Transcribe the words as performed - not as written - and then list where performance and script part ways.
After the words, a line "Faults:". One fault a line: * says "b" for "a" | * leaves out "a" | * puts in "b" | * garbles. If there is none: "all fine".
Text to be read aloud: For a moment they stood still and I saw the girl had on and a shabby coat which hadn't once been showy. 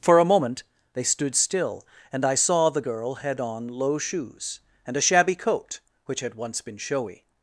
For a moment they stood still and I saw the girl had on low shoes and a shabby coat which had once been showy.
Faults:
* puts in "low shoes"
* says "had" for "hadn't"